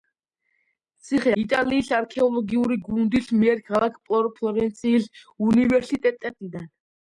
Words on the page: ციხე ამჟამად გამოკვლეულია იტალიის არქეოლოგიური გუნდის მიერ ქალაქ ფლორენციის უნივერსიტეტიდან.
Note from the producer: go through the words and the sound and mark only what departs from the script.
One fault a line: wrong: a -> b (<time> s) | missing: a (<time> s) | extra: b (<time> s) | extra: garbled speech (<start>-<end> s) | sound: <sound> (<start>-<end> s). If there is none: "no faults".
missing: ამჟამად გამოკვლეულია (1.3 s)